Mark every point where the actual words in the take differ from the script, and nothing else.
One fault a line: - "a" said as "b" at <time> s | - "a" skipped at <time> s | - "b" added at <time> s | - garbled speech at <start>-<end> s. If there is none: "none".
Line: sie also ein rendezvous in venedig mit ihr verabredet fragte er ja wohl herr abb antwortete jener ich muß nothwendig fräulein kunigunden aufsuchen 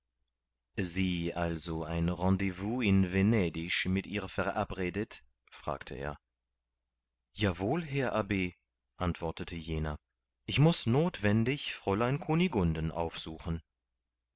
none